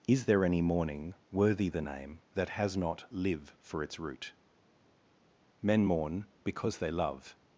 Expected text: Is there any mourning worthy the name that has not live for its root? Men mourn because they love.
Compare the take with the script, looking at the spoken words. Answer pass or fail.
pass